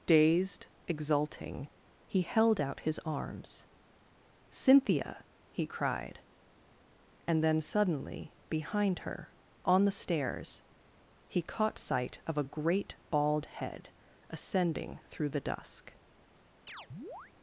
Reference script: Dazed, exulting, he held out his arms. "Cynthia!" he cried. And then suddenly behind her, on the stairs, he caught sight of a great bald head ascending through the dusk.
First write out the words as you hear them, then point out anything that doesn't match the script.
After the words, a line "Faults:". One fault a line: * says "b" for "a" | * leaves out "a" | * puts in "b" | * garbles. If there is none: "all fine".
Dazed, exulting, he held out his arms. "Cynthia!" he cried. And then suddenly behind her, on the stairs, he caught sight of a great bald head ascending through the dusk.
Faults:
all fine